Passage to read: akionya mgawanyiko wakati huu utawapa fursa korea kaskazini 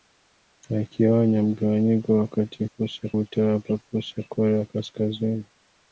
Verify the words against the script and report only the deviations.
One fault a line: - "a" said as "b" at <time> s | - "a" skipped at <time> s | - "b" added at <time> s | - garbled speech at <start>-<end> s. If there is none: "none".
- "huu" said as "fursa" at 2.6 s